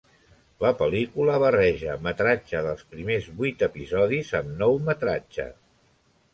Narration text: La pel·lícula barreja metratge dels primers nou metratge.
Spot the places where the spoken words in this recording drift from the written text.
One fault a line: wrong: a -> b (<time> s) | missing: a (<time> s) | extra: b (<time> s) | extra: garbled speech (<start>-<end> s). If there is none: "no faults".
extra: vuit episodis amb (3.4 s)